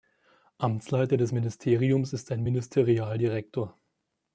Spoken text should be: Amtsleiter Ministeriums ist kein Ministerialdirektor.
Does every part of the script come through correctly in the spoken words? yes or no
no